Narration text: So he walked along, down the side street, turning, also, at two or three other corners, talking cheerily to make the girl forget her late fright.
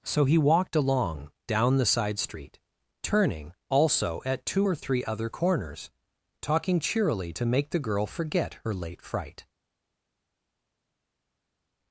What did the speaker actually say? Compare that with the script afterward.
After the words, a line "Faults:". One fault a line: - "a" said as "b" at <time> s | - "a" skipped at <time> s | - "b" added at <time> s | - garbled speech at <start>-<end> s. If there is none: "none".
So he walked along, down the side street, turning, also, at two or three other corners, talking cheerily to make the girl forget her late fright.
Faults:
none